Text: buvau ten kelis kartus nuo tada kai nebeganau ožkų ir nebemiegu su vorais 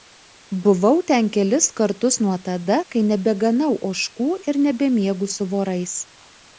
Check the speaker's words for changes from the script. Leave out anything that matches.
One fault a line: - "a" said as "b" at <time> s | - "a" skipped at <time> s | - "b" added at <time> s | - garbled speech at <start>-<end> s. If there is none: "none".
none